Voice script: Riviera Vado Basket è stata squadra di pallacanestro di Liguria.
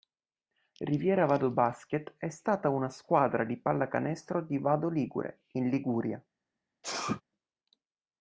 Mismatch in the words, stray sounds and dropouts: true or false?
true